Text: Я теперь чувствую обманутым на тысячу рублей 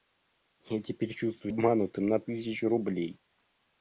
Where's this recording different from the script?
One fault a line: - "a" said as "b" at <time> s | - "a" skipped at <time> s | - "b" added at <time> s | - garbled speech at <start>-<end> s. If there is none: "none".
none